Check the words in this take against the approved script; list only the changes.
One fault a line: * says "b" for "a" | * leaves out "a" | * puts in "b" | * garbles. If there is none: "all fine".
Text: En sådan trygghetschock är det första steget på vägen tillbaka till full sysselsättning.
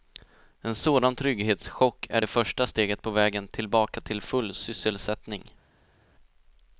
all fine